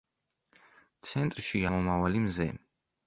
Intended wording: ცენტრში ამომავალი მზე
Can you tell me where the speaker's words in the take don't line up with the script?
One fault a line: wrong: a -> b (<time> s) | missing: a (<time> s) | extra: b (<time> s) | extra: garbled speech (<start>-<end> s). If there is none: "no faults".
no faults